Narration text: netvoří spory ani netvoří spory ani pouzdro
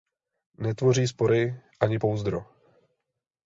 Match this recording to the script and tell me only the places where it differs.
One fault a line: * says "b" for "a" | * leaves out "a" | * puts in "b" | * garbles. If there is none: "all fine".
* leaves out "netvoří spory ani"